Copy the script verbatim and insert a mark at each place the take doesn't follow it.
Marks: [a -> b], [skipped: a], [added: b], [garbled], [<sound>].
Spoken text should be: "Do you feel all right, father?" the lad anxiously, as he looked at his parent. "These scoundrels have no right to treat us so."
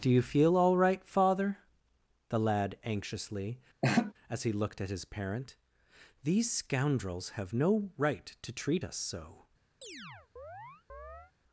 "Do you feel all right, father?" the lad anxiously, [laugh] as he looked at his parent. "These scoundrels have no right to treat us so." [chirp]